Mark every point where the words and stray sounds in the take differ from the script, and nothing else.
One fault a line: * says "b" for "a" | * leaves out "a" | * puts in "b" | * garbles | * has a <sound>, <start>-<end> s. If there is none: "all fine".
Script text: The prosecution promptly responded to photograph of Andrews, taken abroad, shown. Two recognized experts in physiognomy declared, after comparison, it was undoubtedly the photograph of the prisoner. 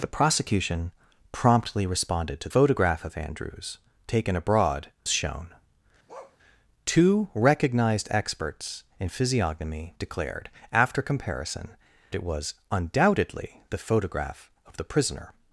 * has a bark, 6.1-6.4 s